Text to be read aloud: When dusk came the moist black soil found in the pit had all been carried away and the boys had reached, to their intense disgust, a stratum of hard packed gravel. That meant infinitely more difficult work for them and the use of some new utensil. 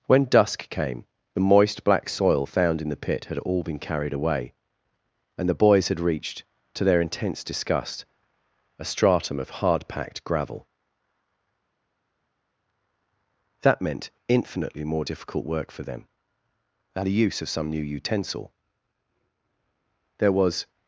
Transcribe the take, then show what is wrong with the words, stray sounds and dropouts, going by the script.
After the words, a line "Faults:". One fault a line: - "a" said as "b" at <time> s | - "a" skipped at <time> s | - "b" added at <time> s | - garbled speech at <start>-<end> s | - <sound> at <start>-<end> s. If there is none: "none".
When dusk came the moist black soil found in the pit had all been carried away and the boys had reached, to their intense disgust, a stratum of hard packed gravel. That meant infinitely more difficult work for them and the use of some new utensil. There was
Faults:
- "There was" added at 20.2 s